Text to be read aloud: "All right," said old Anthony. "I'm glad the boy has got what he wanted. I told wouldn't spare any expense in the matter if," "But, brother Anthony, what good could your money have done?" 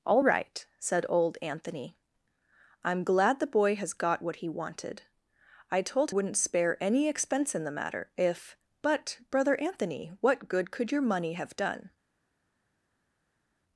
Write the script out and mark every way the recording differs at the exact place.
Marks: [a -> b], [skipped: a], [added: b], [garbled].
"All right," said old Anthony. "I'm glad the boy has got what he wanted. I told wouldn't spare any expense in the matter if," "But, brother Anthony, what good could your money have done?"